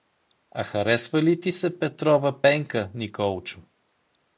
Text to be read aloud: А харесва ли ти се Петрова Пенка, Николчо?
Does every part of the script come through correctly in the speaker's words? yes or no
yes